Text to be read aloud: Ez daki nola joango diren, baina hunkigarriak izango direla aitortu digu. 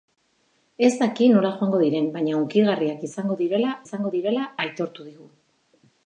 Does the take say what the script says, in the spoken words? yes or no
no